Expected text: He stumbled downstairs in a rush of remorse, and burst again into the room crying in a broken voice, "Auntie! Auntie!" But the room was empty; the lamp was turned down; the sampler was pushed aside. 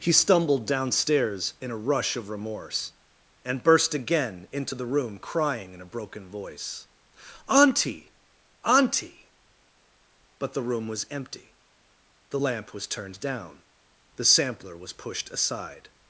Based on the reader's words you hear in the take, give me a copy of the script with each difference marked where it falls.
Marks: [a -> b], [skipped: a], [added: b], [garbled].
He stumbled downstairs in a rush of remorse, and burst again into the room crying in a broken voice, "Auntie! Auntie!" But the room was empty; the lamp was turned down; the sampler was pushed aside.